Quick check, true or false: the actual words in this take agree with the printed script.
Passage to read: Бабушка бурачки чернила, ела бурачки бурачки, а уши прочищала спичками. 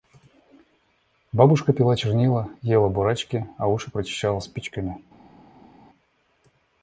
false